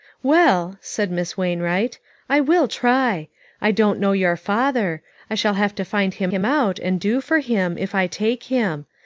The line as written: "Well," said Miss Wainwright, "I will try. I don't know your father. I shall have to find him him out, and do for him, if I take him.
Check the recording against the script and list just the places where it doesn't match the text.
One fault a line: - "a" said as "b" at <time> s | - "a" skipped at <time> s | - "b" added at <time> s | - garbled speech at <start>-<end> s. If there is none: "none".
none